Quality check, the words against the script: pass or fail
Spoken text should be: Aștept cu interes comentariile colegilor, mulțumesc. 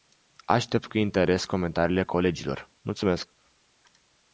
pass